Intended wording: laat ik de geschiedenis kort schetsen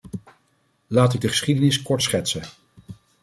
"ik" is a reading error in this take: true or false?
false